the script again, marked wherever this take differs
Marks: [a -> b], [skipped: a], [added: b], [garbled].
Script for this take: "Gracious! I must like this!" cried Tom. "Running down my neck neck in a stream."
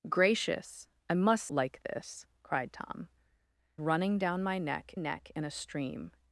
"Gracious! I must like this!" cried Tom. "Running down my neck neck in a stream."